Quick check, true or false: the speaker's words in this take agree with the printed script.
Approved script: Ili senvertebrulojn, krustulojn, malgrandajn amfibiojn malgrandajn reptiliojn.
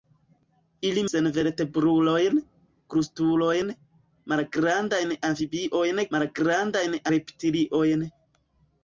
true